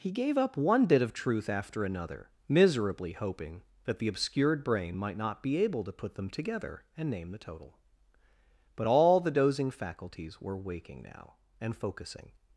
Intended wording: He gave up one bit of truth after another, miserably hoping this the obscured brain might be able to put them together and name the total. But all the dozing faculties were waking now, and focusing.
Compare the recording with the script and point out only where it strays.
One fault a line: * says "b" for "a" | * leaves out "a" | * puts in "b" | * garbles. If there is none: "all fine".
* says "that" for "this"
* puts in "not"